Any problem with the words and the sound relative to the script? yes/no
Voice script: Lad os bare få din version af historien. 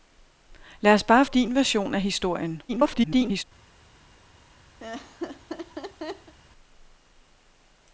yes